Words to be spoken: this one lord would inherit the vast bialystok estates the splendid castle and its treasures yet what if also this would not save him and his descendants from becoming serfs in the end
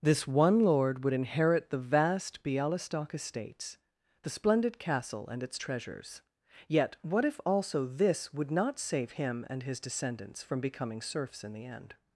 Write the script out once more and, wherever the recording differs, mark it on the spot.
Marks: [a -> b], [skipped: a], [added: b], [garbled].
this one lord would inherit the vast bialystok estates the splendid castle and its treasures yet what if also this would not save him and his descendants from becoming serfs in the end